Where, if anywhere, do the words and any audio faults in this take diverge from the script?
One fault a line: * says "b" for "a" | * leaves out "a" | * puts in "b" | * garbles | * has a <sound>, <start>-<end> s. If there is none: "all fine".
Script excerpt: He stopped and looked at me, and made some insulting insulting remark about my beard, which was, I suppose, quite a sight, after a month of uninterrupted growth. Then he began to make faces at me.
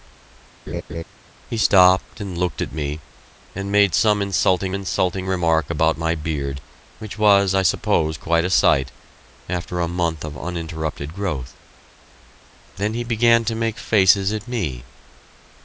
* has a laugh, 0.7-1.0 s